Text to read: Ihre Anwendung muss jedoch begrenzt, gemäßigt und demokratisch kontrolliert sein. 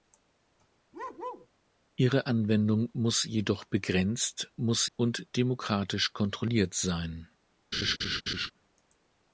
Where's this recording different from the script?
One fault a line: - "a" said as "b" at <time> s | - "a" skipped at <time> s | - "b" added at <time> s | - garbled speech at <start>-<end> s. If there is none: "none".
- "gemäßigt" said as "muss" at 4.6 s